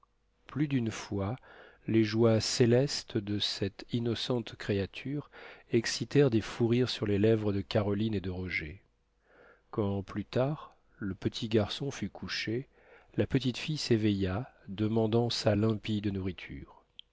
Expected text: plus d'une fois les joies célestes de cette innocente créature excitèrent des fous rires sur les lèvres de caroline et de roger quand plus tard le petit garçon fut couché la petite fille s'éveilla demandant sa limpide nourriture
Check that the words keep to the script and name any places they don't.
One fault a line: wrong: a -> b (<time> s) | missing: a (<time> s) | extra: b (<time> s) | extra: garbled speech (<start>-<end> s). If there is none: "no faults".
no faults